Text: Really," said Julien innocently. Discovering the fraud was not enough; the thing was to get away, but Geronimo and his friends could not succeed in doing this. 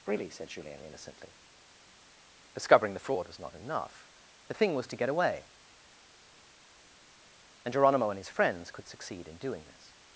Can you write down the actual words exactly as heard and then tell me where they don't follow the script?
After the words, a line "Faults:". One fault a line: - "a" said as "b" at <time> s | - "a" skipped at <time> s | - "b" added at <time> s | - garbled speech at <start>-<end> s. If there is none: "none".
Really," said Julien innocently. Discovering the fraud was not enough; the thing was to get away, and Geronimo and his friends could succeed in doing this.
Faults:
- "but" said as "and" at 7.7 s
- "not" skipped at 8.9 s